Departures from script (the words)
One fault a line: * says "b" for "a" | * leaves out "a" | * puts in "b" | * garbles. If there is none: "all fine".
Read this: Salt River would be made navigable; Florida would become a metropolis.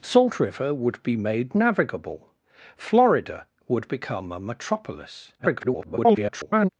* garbles